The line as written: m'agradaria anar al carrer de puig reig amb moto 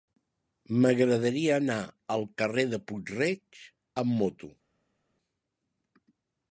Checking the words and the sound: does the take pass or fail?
pass